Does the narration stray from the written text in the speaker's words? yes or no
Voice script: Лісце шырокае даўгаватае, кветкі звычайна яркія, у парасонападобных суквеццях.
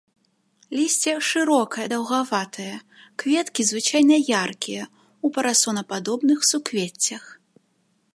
no